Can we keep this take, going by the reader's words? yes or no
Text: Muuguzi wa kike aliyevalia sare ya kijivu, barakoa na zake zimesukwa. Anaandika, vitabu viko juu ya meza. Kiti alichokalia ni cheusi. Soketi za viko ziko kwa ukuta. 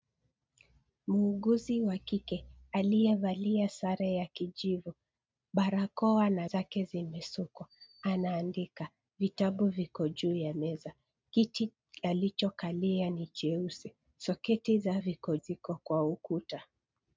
yes